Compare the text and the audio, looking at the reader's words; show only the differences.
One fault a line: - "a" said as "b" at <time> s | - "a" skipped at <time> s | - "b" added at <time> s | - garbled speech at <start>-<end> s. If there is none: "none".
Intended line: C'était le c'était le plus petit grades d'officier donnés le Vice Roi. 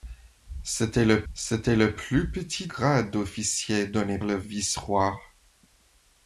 none